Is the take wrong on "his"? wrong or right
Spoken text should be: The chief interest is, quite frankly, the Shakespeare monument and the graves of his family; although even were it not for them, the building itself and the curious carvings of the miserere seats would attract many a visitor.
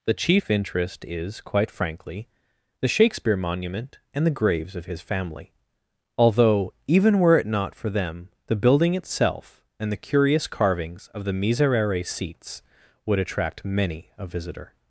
right